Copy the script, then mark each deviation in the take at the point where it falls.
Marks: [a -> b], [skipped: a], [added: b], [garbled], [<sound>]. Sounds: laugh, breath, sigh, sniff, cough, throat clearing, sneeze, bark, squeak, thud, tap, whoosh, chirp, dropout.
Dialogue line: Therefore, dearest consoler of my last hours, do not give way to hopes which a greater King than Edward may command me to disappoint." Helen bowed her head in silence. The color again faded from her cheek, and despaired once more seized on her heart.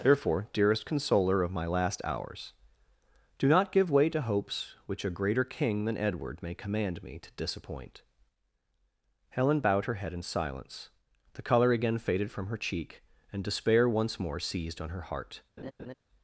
Therefore, dearest consoler of my last hours, do not give way to hopes which a greater King than Edward may command me to disappoint." Helen bowed her head in silence. The color again faded from her cheek, and [despaired -> despair] once more seized on her heart. [laugh]